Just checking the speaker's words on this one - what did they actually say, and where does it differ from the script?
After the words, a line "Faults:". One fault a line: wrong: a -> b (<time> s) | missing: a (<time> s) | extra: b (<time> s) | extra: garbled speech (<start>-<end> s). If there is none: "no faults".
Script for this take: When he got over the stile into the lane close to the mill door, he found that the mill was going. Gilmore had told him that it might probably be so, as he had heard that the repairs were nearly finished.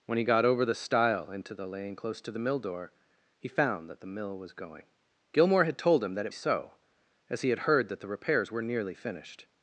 When he got over the stile into the lane close to the mill door, he found that the mill was going. Gilmore had told him that it so, as he had heard that the repairs were nearly finished.
Faults:
missing: might probably be (6.3 s)